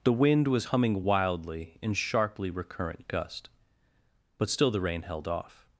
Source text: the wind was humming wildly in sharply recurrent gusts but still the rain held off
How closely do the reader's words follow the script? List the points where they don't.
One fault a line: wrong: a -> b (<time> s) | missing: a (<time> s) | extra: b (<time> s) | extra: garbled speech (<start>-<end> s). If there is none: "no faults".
wrong: gusts -> gust (3.1 s)